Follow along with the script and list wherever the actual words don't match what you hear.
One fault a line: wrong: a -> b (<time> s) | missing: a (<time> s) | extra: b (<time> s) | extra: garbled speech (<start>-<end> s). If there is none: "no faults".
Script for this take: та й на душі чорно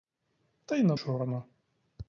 missing: душі (1.0 s)